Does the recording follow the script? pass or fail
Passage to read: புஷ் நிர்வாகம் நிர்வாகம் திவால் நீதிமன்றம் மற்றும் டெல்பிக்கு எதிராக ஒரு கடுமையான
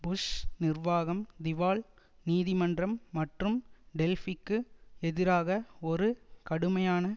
fail